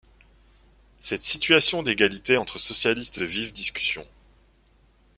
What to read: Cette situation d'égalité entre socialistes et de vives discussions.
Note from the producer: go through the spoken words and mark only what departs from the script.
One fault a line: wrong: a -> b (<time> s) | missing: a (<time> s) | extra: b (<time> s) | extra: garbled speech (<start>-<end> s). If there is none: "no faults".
no faults